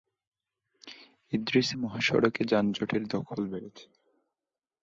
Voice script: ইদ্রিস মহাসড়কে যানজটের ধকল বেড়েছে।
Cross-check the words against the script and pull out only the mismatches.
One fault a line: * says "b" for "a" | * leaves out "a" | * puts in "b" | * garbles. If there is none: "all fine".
all fine